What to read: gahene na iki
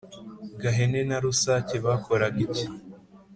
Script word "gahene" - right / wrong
right